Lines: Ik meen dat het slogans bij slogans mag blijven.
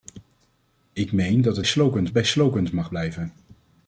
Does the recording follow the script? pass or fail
pass